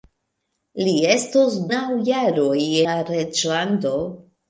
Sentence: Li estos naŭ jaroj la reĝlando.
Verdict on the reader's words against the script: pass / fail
pass